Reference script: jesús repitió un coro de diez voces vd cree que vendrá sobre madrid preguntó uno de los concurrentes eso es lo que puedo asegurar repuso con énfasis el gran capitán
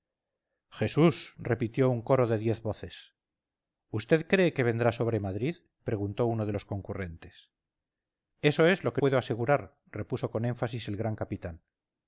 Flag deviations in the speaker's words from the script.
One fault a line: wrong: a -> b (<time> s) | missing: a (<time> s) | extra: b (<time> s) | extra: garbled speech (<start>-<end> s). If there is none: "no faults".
no faults